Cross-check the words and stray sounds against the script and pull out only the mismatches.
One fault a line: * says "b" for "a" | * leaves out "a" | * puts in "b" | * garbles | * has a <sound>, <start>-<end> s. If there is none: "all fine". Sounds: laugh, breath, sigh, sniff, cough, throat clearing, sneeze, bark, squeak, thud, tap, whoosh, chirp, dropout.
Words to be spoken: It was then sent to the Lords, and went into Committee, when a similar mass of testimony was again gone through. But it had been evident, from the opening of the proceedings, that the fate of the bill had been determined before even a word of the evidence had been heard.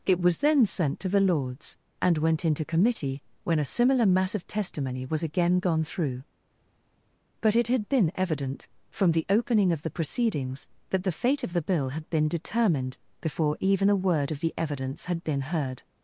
all fine